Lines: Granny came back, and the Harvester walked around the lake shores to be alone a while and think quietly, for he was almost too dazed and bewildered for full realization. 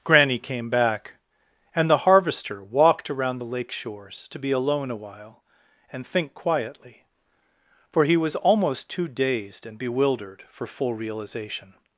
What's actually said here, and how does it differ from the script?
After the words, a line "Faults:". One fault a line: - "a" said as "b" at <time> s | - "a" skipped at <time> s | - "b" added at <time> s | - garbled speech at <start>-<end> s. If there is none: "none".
Granny came back, and the Harvester walked around the lake shores to be alone a while and think quietly, for he was almost too dazed and bewildered for full realization.
Faults:
none